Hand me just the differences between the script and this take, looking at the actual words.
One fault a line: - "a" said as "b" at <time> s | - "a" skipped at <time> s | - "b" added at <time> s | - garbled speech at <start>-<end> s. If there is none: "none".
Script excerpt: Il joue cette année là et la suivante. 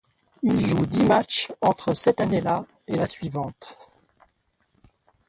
- "dix matchs entre" added at 0.9 s